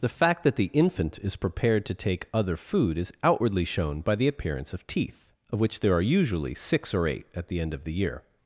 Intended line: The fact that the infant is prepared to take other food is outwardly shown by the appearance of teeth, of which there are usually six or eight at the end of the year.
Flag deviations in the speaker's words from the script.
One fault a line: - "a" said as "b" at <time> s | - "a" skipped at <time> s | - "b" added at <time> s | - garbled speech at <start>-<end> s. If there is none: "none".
none